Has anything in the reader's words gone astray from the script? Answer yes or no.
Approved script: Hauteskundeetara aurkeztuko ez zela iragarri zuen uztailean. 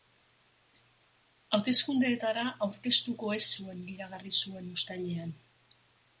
yes